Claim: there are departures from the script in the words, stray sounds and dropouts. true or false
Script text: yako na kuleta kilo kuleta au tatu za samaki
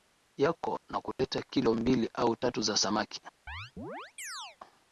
true